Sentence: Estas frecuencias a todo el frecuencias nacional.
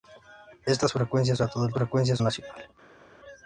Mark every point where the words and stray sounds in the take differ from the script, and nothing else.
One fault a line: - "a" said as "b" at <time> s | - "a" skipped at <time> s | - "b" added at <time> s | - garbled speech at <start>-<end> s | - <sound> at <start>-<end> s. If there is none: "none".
none